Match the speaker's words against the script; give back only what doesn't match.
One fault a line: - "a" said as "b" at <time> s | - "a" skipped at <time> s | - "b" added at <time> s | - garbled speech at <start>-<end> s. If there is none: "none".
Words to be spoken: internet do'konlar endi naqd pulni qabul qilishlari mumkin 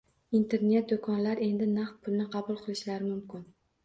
none